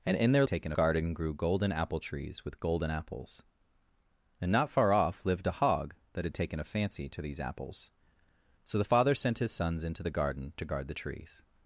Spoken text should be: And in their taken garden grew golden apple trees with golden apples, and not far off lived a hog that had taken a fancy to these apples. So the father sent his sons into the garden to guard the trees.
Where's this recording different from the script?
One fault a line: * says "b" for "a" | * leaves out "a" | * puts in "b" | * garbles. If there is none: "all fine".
all fine